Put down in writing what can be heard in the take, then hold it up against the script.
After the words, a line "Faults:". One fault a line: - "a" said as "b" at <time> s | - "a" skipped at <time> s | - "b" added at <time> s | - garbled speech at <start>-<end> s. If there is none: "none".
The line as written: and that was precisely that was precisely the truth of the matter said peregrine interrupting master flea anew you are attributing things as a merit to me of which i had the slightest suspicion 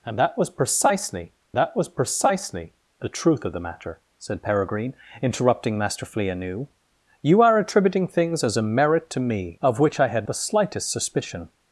and that was precisely that was precisely the truth of the matter said peregrine interrupting master flea anew you are attributing things as a merit to me of which i had the slightest suspicion
Faults:
none